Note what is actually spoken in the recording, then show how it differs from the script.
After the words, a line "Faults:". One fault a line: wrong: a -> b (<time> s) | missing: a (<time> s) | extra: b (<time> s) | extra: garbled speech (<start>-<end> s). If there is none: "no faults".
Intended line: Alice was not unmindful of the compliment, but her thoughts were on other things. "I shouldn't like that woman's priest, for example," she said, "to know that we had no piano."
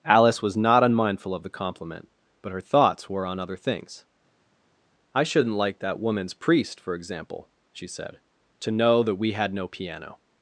Alice was not unmindful of the compliment, but her thoughts were on other things. "I shouldn't like that woman's priest, for example," she said, "to know that we had no piano."
Faults:
no faults